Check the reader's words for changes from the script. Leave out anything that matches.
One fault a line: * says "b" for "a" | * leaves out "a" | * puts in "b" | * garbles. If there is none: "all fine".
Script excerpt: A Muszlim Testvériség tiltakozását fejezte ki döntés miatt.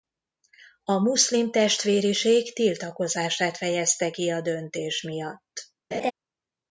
* puts in "a"